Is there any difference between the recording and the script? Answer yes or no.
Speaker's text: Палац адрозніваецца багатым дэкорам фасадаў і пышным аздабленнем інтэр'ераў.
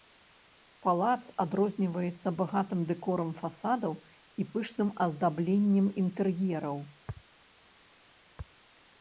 no